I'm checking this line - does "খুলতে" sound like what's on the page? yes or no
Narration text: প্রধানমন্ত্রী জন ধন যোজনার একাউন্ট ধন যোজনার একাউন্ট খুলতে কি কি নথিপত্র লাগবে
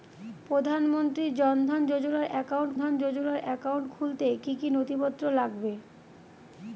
yes